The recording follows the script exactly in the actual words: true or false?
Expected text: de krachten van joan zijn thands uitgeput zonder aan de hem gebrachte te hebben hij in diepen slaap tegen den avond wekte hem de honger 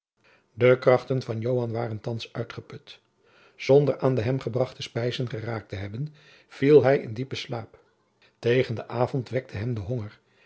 false